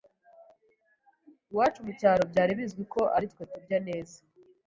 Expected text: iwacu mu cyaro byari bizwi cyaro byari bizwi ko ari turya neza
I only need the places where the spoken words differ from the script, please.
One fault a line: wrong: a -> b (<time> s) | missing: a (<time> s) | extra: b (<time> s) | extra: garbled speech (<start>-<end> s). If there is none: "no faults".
missing: cyaro byari bizwi (2.8 s)
extra: twe (3.3 s)